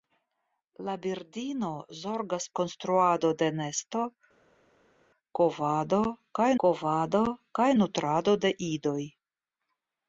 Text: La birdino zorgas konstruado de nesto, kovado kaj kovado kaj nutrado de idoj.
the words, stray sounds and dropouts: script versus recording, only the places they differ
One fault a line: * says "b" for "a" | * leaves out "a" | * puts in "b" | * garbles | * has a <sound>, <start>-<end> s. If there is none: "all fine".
all fine